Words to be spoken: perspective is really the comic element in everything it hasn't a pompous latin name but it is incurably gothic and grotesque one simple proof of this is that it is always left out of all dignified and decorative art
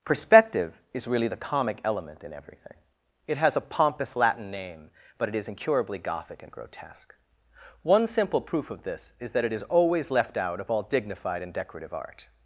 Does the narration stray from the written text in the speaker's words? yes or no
yes